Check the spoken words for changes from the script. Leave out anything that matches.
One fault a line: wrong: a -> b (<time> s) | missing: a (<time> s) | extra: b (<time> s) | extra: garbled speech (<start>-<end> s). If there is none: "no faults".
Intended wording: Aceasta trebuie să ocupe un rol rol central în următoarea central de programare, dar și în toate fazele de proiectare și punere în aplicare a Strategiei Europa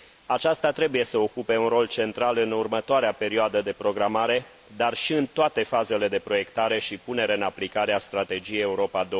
missing: rol (1.9 s)
wrong: central -> perioadă (3.1 s)